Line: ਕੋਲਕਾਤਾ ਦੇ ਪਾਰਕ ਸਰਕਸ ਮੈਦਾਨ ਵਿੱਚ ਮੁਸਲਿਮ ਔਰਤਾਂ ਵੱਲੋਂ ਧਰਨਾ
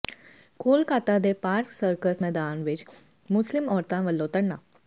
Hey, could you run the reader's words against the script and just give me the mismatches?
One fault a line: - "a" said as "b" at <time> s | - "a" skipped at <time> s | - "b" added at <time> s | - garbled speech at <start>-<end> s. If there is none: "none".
none